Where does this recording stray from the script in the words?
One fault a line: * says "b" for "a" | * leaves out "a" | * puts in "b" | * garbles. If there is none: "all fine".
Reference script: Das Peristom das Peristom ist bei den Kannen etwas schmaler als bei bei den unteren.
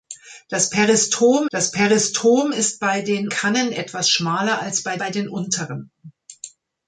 all fine